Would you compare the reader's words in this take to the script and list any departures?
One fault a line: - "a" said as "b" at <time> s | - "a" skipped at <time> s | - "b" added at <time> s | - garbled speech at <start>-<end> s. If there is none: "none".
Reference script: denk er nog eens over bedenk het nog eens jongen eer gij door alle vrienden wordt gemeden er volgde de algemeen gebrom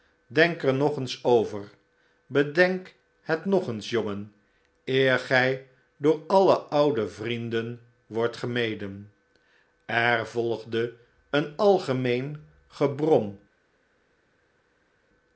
- "oude" added at 6.6 s
- "de" said as "een" at 11.3 s